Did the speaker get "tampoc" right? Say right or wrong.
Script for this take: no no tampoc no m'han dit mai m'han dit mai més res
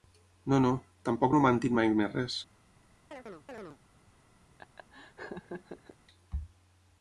right